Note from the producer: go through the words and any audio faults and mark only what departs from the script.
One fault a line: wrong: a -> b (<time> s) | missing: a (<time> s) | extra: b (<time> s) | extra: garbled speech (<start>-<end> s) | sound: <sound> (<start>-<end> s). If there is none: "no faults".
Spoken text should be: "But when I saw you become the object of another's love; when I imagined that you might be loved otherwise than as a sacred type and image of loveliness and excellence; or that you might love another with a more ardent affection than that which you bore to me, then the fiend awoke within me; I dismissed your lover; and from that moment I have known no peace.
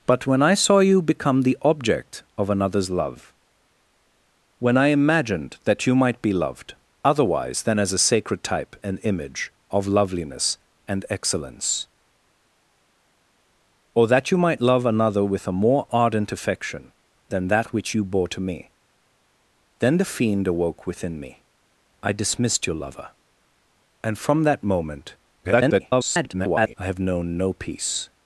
extra: garbled speech (25.4-26.7 s)